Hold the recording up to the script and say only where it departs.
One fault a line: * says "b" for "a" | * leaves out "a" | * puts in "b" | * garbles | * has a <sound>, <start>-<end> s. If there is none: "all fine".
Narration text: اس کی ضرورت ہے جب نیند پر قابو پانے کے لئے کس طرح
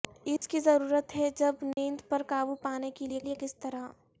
* has a dropout, 0.4-0.4 s
* has a dropout, 1.7-1.8 s
* puts in "لئے"